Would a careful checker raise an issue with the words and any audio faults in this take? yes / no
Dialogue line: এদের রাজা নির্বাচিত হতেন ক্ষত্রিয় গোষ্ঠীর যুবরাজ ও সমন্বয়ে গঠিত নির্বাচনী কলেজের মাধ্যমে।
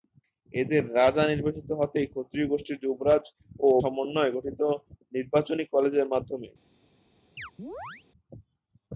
yes